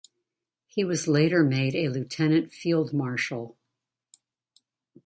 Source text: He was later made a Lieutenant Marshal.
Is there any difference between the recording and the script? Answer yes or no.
yes